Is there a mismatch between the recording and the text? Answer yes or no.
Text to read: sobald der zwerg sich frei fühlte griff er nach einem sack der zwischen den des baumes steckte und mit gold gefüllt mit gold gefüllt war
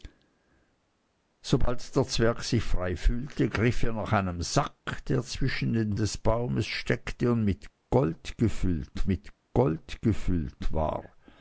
no